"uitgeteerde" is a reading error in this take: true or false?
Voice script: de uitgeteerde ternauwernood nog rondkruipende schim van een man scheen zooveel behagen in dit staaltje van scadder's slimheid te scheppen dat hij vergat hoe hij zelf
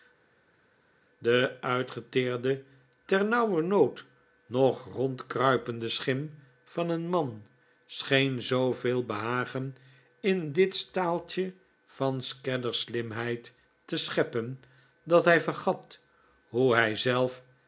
false